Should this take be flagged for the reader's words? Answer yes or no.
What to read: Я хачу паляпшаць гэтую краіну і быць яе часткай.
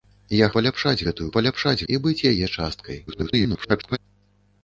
yes